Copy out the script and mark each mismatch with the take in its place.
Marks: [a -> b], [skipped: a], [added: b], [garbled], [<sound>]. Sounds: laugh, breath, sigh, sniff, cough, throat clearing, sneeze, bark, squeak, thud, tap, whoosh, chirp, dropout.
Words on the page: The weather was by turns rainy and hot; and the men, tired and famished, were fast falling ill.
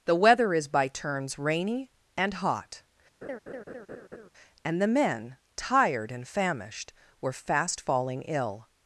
The weather [was -> is] by turns rainy and hot; [laugh] and the men, tired and famished, were fast falling ill.